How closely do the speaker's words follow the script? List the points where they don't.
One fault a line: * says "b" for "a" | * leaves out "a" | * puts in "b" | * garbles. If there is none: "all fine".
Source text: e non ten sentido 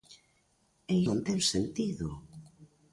all fine